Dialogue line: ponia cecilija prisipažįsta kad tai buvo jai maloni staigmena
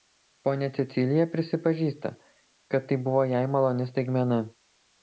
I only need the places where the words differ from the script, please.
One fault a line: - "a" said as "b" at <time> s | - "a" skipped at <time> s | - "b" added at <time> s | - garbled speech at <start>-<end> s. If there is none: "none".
none